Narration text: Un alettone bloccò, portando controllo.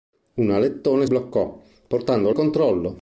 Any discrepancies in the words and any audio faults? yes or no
no